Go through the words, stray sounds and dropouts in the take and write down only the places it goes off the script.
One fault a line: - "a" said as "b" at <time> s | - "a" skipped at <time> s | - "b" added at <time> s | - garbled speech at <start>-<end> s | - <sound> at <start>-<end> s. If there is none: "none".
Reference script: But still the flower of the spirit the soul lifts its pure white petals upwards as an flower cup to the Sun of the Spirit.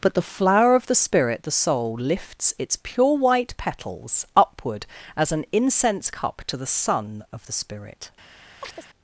- "still" skipped at 0.1 s
- "upwards" said as "upward" at 4.3 s
- "flower" said as "incense" at 5.5 s
- chirp at 8.6-8.9 s